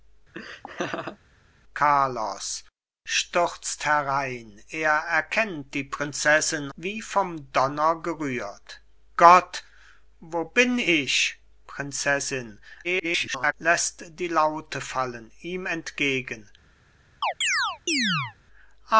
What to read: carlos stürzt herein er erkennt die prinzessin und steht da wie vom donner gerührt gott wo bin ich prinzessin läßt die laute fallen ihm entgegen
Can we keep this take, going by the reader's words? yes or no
no